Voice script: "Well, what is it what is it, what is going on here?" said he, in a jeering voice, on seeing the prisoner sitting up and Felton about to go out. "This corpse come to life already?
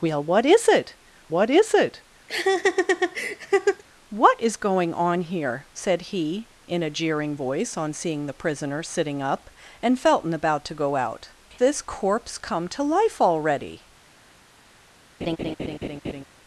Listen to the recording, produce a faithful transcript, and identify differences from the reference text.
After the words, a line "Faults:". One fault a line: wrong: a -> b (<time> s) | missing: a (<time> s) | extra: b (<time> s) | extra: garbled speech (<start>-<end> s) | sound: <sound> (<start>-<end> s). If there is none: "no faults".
"Well, what is it what is it, what is going on here?" said he, in a jeering voice, on seeing the prisoner sitting up and Felton about to go out. "This corpse come to life already?
Faults:
sound: laugh (2.3-3.8 s)
sound: laugh (15.2-16.2 s)